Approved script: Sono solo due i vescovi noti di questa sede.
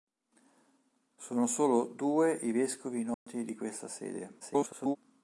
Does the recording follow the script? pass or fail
fail